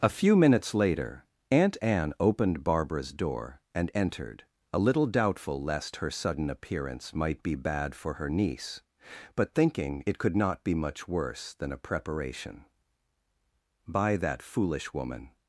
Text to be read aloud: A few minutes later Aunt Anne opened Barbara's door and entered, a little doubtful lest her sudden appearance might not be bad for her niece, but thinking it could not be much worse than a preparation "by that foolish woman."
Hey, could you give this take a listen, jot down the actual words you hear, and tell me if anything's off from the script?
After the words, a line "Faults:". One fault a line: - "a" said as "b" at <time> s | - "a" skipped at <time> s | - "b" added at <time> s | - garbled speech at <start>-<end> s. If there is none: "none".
A few minutes later Aunt Anne opened Barbara's door and entered, a little doubtful lest her sudden appearance might be bad for her niece, but thinking it could not be much worse than a preparation "by that foolish woman."
Faults:
- "not" skipped at 7.4 s